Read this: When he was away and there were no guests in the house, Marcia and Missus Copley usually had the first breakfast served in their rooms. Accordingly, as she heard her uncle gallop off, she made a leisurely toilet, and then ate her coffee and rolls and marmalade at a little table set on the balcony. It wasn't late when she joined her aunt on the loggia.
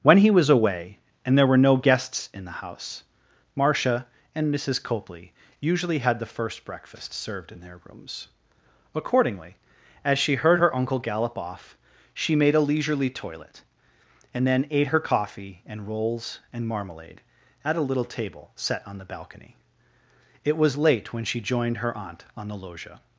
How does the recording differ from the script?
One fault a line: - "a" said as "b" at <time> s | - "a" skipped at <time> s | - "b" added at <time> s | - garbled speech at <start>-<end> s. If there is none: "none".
- "wasn't" said as "was" at 20.6 s